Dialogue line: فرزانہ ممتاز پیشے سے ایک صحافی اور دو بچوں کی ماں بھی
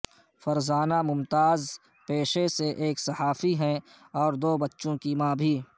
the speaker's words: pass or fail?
fail